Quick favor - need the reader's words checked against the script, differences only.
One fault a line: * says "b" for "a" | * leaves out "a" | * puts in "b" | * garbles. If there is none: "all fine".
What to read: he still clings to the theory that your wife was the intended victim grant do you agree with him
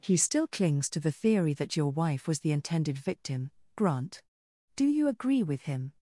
all fine